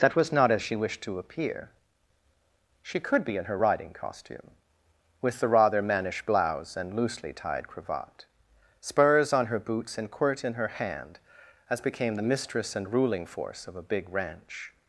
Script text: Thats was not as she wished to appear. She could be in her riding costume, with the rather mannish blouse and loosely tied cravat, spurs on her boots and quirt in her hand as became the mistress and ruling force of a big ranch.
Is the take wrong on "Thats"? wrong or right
wrong